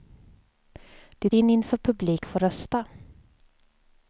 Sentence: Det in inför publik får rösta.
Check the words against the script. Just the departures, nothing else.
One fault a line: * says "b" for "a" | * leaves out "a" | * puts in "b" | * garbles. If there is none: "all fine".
all fine